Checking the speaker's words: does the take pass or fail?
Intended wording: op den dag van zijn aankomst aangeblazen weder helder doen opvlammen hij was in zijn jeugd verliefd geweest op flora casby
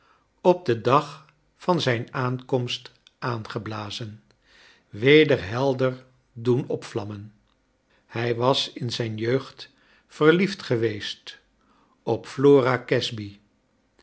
pass